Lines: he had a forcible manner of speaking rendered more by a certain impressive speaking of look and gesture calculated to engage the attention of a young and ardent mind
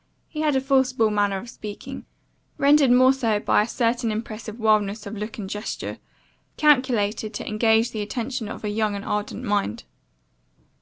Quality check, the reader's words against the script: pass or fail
fail